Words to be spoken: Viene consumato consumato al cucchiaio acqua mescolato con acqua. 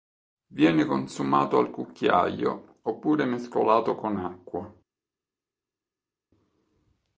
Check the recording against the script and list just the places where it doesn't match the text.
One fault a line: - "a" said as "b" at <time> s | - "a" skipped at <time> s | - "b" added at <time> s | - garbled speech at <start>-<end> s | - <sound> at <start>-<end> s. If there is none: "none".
- "consumato" skipped at 1.6 s
- "acqua" said as "oppure" at 2.8 s